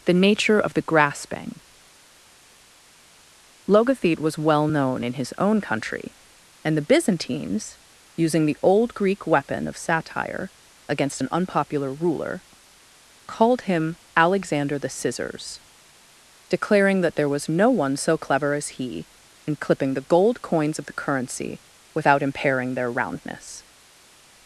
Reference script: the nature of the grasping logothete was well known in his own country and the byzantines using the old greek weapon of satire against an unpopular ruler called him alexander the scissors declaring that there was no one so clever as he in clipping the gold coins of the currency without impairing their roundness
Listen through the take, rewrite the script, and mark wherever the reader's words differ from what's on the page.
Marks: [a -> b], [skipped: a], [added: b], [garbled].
the nature of the grasping logothete was well known in his own country and the byzantines using the old greek weapon of satire against an unpopular ruler called him alexander the scissors declaring that there was no one so clever as he in clipping the gold coins of the currency without impairing their roundness